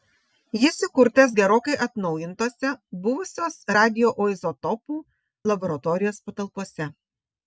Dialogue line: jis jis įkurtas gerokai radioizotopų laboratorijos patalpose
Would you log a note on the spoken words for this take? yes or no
yes